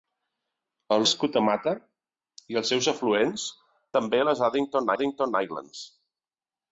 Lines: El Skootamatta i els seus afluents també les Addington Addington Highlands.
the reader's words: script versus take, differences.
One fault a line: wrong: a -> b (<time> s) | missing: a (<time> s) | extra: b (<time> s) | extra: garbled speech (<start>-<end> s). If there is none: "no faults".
no faults